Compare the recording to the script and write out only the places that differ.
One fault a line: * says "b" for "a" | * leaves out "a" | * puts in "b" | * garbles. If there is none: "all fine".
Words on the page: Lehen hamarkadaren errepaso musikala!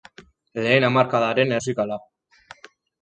* leaves out "errepaso"